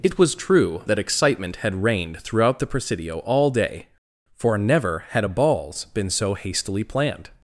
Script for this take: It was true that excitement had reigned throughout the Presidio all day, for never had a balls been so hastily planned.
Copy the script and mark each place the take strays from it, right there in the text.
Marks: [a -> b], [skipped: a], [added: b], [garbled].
It was true that excitement had reigned throughout the Presidio all day, for never had a balls been so hastily planned.